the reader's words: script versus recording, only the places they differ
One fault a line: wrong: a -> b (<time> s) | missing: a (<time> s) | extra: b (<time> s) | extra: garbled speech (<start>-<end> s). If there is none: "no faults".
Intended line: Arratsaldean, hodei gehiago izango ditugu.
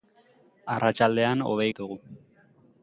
missing: gehiago izango (1.7 s)